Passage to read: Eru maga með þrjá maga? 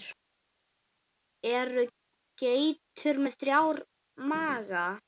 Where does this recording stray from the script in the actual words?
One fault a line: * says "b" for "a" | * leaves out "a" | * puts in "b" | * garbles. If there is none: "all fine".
* says "geitur" for "maga"